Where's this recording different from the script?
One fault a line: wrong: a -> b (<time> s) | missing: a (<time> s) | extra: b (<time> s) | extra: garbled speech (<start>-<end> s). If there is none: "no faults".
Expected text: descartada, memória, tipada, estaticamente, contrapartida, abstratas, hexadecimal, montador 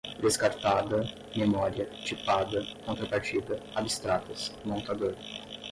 missing: estaticamente (2.6 s)
missing: hexadecimal (4.5 s)